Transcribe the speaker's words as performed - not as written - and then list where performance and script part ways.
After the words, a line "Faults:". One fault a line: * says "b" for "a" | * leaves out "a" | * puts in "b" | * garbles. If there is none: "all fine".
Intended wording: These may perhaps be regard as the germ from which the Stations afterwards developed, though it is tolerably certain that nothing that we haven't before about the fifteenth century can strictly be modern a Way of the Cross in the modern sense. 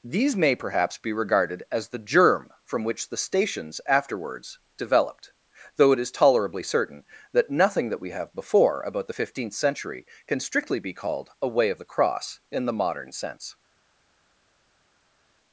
These may perhaps be regarded as the germ from which the Stations afterwards developed, though it is tolerably certain that nothing that we have before about the fifteenth century can strictly be called a Way of the Cross in the modern sense.
Faults:
* says "regarded" for "regard"
* says "have" for "haven't"
* says "called" for "modern"